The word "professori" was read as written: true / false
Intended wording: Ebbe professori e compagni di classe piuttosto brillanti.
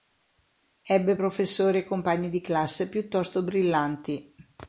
true